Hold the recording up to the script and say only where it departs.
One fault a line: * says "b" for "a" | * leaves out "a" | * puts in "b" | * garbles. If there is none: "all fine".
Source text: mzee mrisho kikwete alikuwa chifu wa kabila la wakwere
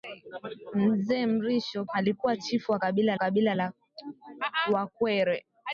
* leaves out "kikwete"
* puts in "kabila"